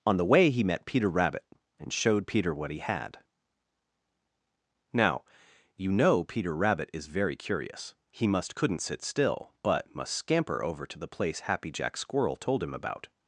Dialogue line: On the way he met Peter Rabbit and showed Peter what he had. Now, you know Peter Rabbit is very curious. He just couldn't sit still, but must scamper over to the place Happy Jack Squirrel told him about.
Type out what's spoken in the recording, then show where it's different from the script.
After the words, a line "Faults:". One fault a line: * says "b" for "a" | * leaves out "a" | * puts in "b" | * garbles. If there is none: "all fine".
On the way he met Peter Rabbit and showed Peter what he had. Now, you know Peter Rabbit is very curious. He must couldn't sit still, but must scamper over to the place Happy Jack Squirrel told him about.
Faults:
* says "must" for "just"